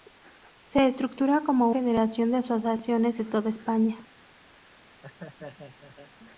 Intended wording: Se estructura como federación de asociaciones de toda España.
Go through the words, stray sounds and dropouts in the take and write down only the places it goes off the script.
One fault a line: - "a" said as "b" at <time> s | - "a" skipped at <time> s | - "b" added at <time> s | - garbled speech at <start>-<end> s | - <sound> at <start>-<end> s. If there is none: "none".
- laugh at 5.0-6.1 s